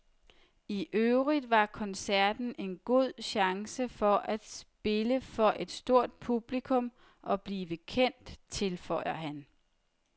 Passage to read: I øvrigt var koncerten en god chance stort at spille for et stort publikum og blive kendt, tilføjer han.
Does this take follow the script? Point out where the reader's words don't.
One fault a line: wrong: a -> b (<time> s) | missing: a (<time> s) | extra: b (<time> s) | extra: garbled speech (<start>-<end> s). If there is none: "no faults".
wrong: stort -> for (3.9 s)